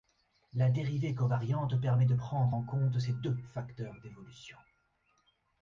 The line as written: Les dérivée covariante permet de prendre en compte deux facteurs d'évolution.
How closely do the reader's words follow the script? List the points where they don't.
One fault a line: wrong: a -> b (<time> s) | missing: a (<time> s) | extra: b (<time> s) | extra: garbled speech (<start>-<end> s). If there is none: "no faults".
wrong: Les -> La (0.5 s)
extra: ces (3.0 s)